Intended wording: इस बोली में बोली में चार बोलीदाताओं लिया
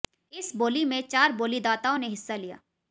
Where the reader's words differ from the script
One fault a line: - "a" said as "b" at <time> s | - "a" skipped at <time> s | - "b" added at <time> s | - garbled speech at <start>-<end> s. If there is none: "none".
- "बोली में चार बोलीदाताओं" said as "चार बोलीदाताओं ने हिस्सा" at 1.1 s